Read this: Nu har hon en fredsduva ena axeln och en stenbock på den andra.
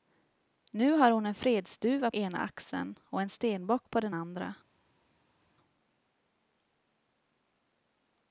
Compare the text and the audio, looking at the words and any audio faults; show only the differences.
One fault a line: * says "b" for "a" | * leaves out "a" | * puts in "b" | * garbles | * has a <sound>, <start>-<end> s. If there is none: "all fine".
all fine